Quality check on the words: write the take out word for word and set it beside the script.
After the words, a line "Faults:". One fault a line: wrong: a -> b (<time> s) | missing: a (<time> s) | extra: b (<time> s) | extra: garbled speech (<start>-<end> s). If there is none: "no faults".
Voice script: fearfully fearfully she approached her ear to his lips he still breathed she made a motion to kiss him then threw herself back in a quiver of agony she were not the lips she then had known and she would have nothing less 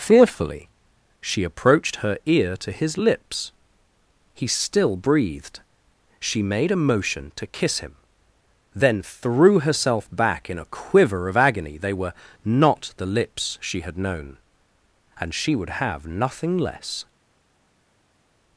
fearfully she approached her ear to his lips he still breathed she made a motion to kiss him then threw herself back in a quiver of agony they were not the lips she had known and she would have nothing less
Faults:
missing: fearfully (0.7 s)
wrong: she -> they (11.8 s)
missing: then (13.8 s)